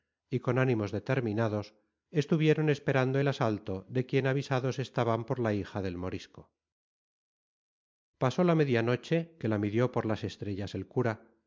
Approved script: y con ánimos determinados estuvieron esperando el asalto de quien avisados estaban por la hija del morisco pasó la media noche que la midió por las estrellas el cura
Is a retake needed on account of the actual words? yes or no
no